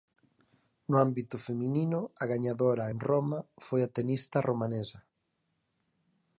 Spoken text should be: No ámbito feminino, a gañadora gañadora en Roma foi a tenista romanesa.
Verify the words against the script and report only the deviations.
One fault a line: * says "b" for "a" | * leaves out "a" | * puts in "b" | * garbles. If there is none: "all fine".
* leaves out "gañadora"